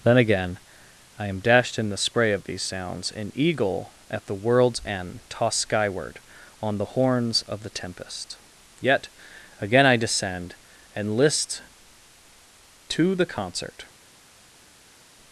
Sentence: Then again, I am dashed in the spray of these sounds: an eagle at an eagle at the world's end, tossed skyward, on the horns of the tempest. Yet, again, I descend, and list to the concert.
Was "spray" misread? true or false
false